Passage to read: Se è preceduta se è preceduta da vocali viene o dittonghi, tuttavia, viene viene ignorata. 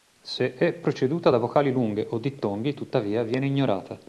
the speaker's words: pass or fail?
fail